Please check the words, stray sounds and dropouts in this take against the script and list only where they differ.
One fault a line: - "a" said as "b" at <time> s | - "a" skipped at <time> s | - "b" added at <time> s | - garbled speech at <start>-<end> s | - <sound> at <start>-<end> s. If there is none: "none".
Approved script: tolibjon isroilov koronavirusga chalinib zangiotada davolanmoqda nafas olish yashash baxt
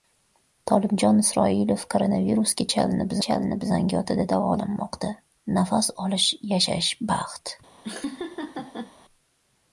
- "chalinib" added at 3.3 s
- laugh at 7.8-8.9 s